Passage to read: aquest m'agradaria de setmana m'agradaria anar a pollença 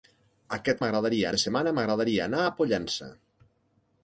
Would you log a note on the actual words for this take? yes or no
no